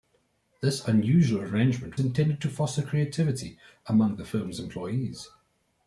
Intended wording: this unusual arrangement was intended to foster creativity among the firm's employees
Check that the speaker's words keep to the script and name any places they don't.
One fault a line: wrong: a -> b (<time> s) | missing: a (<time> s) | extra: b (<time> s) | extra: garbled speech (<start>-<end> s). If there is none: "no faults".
missing: was (2.0 s)